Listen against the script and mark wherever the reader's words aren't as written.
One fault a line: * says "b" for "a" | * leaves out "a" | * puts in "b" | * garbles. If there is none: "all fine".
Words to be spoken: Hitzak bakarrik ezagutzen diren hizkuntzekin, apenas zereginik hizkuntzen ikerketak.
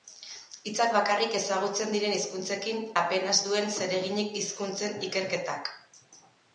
* puts in "duen"